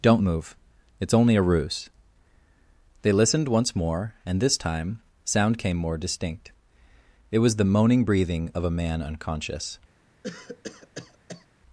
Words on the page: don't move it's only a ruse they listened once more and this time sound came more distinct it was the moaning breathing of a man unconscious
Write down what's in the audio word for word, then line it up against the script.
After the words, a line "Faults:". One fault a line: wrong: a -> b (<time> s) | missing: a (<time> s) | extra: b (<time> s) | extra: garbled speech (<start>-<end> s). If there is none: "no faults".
don't move it's only a ruse they listened once more and this time sound came more distinct it was the moaning breathing of a man unconscious
Faults:
no faults